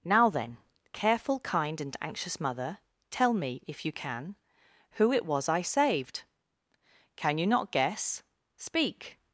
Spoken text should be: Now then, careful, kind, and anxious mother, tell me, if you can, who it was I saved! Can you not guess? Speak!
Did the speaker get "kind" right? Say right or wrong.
right